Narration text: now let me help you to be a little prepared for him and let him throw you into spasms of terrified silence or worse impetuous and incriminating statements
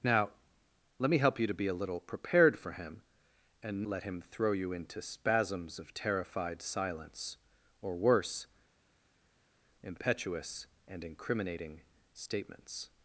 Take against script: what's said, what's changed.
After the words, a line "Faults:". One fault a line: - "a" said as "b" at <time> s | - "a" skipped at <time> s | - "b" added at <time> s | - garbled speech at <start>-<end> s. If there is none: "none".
now let me help you to be a little prepared for him and let him throw you into spasms of terrified silence or worse impetuous and incriminating statements
Faults:
none